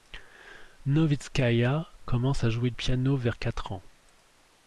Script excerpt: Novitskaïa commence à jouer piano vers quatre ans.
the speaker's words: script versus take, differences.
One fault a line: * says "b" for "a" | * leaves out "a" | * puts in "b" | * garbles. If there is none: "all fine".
all fine